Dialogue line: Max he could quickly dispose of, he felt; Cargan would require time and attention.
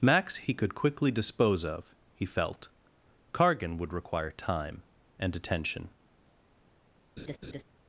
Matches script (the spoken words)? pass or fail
pass